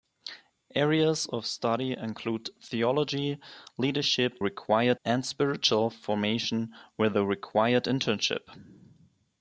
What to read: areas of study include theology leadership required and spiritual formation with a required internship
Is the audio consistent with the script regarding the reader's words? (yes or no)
yes